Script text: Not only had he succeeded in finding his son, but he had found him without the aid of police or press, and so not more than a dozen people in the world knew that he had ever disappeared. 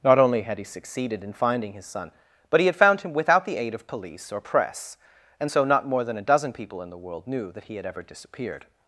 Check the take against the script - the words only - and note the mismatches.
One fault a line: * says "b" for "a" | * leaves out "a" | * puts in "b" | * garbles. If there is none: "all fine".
all fine